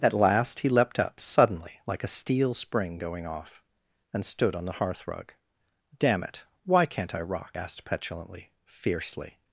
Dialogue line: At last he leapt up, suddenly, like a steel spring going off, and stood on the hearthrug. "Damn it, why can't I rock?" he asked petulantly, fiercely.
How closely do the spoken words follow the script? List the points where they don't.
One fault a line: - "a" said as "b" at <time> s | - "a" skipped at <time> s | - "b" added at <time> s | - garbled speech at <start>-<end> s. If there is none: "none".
- "he" skipped at 7.6 s